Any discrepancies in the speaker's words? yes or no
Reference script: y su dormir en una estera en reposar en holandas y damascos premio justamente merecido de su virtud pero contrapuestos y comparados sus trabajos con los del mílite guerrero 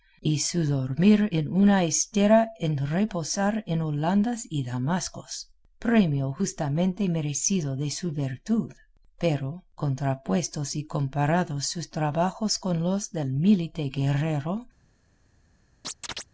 no